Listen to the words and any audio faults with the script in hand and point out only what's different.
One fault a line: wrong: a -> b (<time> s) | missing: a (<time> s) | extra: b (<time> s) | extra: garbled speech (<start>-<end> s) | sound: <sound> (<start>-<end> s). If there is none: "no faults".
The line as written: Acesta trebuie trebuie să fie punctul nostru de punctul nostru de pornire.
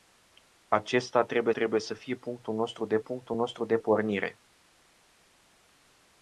no faults